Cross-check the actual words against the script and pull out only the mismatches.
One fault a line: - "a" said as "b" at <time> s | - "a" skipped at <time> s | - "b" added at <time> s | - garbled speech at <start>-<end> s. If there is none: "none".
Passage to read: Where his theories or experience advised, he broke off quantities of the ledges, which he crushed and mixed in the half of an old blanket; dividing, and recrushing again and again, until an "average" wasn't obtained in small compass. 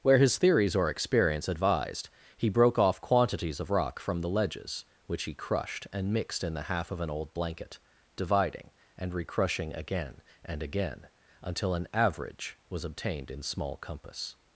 - "rock from" added at 3.7 s
- "wasn't" said as "was" at 12.7 s